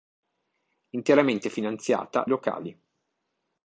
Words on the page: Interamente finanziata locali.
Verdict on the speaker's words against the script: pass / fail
pass